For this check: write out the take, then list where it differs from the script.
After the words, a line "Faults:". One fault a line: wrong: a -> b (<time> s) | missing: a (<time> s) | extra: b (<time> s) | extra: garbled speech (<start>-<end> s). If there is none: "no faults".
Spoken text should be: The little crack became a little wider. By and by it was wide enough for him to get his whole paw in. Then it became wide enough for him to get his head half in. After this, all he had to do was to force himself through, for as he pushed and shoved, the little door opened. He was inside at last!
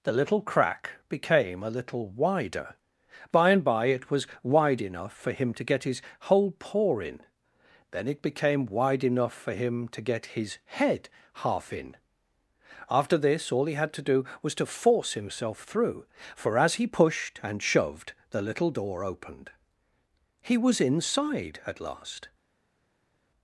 The little crack became a little wider. By and by it was wide enough for him to get his whole paw in. Then it became wide enough for him to get his head half in. After this, all he had to do was to force himself through, for as he pushed and shoved, the little door opened. He was inside at last!
Faults:
no faults